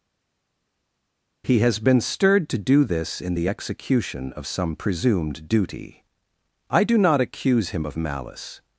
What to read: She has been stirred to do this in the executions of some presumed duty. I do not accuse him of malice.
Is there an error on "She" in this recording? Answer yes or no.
yes